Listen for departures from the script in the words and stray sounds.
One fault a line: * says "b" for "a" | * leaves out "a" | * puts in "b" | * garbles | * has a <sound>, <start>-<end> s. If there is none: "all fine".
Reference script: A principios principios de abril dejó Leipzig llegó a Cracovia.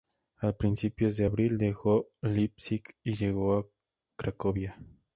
* leaves out "principios"
* puts in "y"